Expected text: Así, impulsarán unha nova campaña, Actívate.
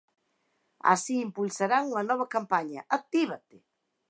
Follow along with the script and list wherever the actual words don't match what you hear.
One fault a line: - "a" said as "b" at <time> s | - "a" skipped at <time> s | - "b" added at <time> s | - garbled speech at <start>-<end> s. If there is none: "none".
none